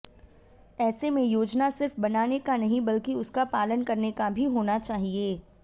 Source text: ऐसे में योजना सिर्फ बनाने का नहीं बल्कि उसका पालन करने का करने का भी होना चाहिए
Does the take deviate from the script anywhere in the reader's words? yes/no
yes